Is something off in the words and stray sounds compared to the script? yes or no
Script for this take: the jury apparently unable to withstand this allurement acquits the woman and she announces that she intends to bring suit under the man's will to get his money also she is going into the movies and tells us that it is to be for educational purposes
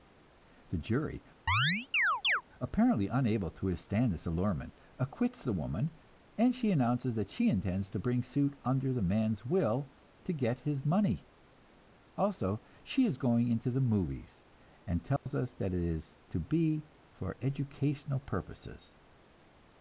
yes